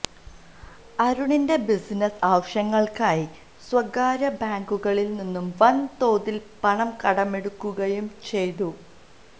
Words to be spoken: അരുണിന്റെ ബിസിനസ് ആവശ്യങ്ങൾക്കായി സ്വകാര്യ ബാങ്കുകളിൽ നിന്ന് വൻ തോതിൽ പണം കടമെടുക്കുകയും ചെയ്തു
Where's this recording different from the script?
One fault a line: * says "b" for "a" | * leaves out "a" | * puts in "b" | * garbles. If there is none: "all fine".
all fine